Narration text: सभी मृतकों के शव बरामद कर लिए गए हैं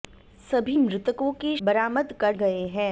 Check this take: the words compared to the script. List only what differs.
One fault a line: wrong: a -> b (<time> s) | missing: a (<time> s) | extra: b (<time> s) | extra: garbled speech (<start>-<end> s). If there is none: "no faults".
missing: शव (1.6 s)
missing: लिए (2.4 s)